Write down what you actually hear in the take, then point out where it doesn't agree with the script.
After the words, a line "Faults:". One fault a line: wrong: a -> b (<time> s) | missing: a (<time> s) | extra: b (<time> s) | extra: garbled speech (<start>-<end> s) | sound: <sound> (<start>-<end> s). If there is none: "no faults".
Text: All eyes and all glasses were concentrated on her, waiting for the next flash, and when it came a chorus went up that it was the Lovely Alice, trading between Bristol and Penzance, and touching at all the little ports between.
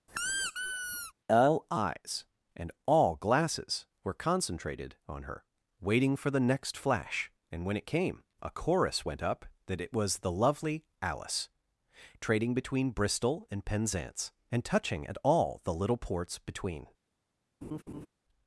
All eyes and all glasses were concentrated on her, waiting for the next flash, and when it came a chorus went up that it was the Lovely Alice, trading between Bristol and Penzance, and touching at all the little ports between.
Faults:
sound: squeak (0.1-1.1 s)
sound: laugh (17.6-18.1 s)